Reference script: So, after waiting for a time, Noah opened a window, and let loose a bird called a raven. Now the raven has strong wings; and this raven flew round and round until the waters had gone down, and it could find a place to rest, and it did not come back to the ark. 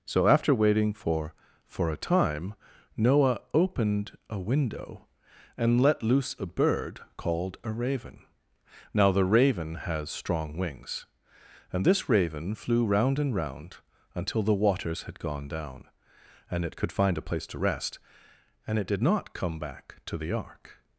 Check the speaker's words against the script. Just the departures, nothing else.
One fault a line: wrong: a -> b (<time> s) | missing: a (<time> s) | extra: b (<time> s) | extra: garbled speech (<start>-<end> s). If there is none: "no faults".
extra: for (1.6 s)